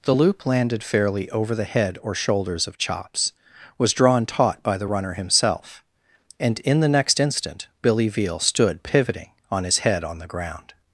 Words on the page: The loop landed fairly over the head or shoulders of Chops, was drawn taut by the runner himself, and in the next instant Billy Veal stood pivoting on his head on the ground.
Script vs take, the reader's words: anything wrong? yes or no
no